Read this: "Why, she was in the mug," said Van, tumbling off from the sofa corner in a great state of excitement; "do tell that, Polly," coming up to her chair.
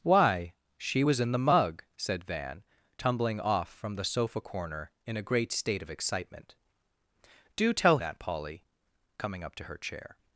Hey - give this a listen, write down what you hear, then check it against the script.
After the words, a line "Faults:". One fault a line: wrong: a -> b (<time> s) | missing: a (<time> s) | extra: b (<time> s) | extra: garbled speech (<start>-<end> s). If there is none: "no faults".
"Why, she was in the mug," said Van, tumbling off from the sofa corner in a great state of excitement; "do tell that, Polly," coming up to her chair.
Faults:
no faults